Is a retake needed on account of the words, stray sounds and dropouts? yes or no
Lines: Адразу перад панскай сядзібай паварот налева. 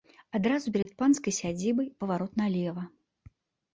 yes